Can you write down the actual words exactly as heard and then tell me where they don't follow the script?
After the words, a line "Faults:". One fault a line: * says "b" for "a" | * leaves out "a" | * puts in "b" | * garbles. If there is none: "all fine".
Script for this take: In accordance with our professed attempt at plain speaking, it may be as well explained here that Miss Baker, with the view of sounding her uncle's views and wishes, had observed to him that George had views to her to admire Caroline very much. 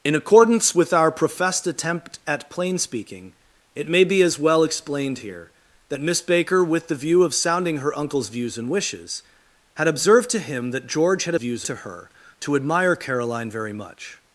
In accordance with our professed attempt at plain speaking, it may be as well explained here that Miss Baker, with the view of sounding her uncle's views and wishes, had observed to him that George had views to her to admire Caroline very much.
Faults:
all fine